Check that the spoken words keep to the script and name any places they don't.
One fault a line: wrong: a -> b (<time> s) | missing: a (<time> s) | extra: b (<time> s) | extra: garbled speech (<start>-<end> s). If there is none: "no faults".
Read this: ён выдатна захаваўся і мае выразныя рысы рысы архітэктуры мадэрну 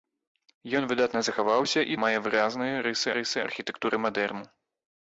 no faults